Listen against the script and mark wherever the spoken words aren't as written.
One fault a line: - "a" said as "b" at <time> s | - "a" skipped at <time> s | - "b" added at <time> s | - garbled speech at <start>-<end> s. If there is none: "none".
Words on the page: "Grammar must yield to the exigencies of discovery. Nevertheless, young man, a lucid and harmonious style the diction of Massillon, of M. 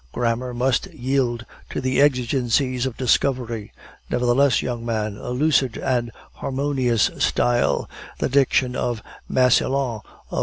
none